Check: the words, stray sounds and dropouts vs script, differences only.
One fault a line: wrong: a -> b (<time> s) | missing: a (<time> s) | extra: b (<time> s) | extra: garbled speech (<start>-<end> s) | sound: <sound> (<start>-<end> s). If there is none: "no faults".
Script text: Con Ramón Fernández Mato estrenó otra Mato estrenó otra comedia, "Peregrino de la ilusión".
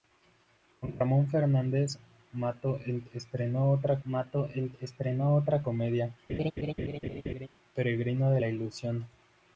sound: laugh (6.3-7.5 s)